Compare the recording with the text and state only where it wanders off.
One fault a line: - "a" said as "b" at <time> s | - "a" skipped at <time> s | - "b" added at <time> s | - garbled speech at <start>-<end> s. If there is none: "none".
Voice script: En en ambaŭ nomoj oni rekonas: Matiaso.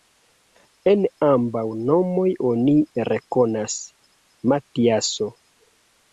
- "en" skipped at 1.0 s